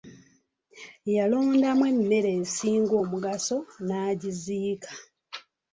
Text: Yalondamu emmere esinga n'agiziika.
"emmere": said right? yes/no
yes